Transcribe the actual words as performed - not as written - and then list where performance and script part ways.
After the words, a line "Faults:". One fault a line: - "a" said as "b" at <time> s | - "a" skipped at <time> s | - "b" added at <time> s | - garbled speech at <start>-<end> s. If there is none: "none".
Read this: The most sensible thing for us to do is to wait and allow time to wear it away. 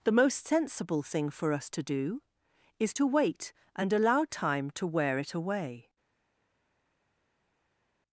The most sensible thing for us to do is to wait and allow time to wear it away.
Faults:
none